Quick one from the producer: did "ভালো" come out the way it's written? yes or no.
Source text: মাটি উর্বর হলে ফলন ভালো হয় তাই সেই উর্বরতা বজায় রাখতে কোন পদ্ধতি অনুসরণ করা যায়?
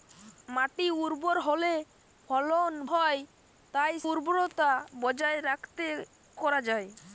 no